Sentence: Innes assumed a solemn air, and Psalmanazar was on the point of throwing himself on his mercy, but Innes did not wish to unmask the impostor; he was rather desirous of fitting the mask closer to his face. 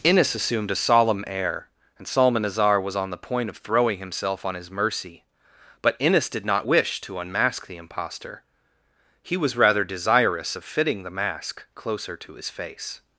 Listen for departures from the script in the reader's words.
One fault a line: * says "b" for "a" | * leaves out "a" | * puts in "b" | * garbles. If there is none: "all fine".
all fine